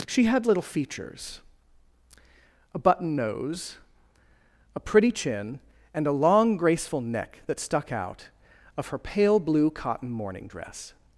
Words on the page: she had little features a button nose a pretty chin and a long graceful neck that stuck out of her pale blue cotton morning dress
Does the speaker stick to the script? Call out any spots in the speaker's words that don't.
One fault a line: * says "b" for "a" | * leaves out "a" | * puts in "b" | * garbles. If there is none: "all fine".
all fine